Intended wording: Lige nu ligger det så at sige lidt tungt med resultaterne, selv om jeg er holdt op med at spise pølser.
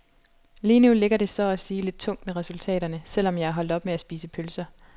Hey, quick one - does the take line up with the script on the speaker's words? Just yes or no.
yes